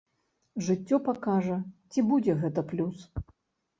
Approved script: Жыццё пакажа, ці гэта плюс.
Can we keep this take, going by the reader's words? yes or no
no